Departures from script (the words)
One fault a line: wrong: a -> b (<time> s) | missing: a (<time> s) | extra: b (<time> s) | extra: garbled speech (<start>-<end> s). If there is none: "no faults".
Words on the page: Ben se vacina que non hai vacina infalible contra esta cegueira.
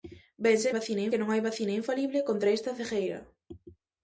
no faults